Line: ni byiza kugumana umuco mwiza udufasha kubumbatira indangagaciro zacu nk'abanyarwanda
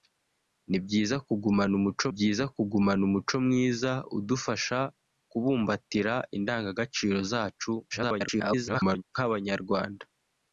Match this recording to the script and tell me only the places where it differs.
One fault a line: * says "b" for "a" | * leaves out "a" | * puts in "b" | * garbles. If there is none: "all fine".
* puts in "byiza kugumana umuco"
* garbles